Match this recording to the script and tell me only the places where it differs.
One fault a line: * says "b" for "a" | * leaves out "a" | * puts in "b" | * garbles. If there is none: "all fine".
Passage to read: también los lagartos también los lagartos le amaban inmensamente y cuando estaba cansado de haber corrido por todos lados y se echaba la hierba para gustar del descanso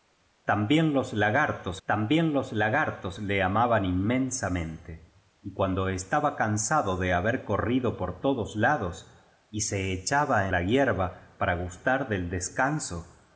all fine